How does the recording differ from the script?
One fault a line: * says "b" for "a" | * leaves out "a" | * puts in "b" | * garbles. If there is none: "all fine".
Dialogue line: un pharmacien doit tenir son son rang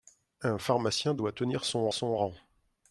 all fine